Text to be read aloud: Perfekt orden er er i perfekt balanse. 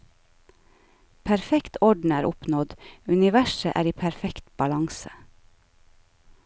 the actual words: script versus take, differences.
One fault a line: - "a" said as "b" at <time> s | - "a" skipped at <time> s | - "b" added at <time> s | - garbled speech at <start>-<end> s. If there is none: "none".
- "oppnådd universet" added at 2.3 s